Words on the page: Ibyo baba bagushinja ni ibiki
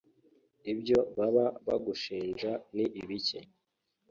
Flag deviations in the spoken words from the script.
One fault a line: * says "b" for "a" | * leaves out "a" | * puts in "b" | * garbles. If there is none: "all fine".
all fine